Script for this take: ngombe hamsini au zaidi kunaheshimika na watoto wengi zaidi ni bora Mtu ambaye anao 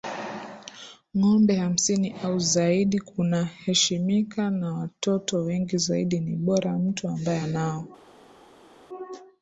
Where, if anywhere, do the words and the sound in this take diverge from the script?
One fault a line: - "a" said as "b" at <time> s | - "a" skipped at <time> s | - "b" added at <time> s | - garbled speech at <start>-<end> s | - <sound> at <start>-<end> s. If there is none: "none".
none